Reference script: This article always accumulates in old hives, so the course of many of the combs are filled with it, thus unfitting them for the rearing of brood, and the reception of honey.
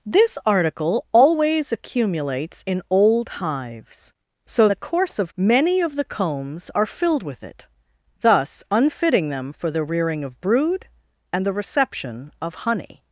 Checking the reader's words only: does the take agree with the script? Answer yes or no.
yes